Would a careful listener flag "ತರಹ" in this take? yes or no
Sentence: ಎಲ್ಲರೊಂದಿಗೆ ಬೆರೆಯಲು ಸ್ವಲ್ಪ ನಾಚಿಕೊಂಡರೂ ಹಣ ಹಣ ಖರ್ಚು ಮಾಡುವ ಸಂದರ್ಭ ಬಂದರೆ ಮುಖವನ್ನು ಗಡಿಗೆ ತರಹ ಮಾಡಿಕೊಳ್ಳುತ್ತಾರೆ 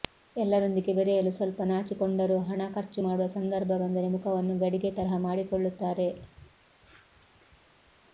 no